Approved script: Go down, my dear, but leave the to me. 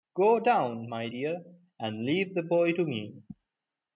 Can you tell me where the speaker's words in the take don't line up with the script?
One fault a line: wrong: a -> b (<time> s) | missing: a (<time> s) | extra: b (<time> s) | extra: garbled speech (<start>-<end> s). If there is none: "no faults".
wrong: but -> and (1.8 s)
extra: boy (2.4 s)